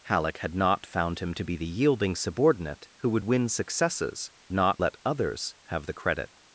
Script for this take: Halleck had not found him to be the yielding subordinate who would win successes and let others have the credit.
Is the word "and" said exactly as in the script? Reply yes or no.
no